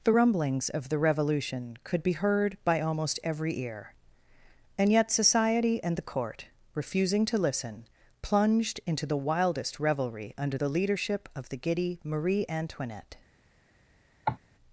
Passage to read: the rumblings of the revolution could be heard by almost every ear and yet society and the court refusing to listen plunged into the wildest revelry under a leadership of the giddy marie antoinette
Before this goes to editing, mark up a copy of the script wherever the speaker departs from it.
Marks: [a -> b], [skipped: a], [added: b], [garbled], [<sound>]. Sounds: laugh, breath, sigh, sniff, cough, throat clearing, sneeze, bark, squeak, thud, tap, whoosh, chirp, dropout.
the rumblings of the revolution could be heard by almost every ear and yet society and the court refusing to listen plunged into the wildest revelry under [a -> the] leadership of the giddy marie antoinette [cough]